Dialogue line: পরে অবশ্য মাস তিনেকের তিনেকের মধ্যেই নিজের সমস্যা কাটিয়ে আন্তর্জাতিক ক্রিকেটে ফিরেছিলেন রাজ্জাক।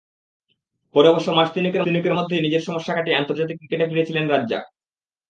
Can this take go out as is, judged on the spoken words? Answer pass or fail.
pass